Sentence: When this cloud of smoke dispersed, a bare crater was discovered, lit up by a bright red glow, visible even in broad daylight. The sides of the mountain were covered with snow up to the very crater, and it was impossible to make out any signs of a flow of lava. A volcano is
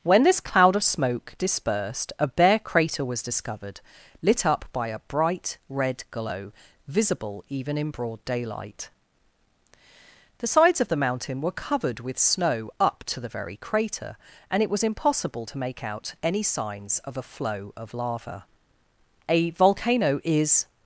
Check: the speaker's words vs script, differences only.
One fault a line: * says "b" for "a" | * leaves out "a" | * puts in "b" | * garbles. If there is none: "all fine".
all fine